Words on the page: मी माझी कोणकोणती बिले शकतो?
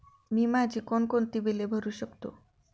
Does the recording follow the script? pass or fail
fail